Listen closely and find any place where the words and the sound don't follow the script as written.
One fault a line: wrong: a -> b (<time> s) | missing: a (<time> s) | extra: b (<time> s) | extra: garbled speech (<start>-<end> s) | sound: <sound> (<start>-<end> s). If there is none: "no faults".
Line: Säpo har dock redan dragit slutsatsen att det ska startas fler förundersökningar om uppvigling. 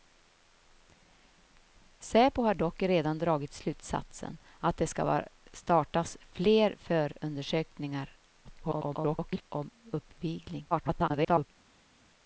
extra: garbled speech (8.4-9.4 s)
extra: garbled speech (10.7-11.5 s)